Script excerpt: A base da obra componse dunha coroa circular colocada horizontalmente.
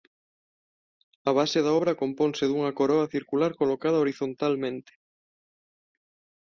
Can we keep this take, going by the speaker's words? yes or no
yes